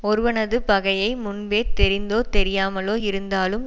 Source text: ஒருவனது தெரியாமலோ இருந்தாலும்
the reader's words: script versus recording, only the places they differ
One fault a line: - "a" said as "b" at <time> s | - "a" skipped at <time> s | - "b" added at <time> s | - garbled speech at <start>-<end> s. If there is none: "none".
- "பகையை முன்பே தெரிந்தோ" added at 0.6 s